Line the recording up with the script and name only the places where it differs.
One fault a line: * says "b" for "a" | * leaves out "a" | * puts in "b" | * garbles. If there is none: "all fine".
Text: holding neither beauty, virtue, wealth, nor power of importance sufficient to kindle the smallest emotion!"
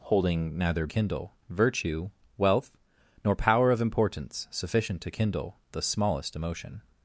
* says "kindle" for "beauty"